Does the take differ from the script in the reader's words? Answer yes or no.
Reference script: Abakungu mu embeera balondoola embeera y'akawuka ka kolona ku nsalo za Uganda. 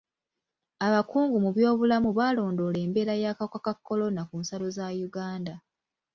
yes